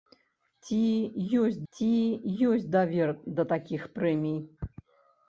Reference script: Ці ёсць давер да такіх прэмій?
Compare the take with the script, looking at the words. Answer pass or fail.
fail